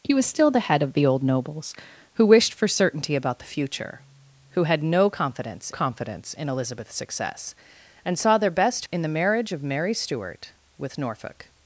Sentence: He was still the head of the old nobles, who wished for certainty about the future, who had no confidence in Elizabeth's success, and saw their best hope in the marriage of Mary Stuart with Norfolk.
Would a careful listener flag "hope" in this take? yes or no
yes